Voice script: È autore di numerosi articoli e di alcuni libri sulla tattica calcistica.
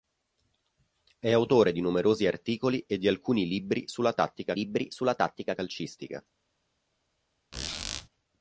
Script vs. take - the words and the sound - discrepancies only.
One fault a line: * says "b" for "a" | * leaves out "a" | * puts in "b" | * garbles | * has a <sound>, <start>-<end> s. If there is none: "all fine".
* puts in "libri sulla tattica"
* has a squeak, 7.5-8.1 s